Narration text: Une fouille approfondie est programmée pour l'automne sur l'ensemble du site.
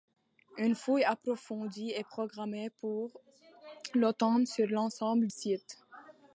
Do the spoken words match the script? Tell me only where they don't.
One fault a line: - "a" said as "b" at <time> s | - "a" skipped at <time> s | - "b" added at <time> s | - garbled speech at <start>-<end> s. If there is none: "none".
- "du" skipped at 5.3 s